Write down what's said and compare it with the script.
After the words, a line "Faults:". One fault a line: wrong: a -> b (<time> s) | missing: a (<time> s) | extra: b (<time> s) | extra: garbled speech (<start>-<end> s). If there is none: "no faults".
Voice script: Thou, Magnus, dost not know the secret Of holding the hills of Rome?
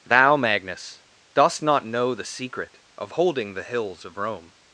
Thou, Magnus, dost not know the secret Of holding the hills of Rome?
Faults:
no faults